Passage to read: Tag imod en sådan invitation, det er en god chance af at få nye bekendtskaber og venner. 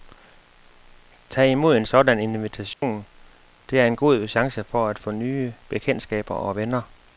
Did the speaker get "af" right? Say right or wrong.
wrong